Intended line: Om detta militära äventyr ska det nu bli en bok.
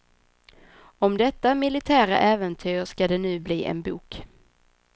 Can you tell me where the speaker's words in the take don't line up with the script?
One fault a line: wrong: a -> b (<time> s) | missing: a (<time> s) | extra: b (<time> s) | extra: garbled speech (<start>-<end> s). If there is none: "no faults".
no faults